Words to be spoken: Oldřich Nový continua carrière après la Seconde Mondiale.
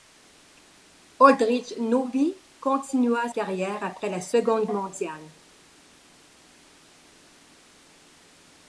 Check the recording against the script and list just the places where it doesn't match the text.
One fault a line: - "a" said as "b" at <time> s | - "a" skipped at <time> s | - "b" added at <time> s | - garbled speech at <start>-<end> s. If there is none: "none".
none